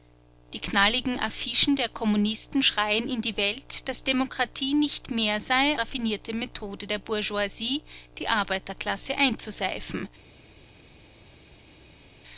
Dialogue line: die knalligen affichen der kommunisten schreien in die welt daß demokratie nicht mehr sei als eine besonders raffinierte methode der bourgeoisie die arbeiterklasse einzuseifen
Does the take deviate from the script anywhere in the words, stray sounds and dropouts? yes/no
yes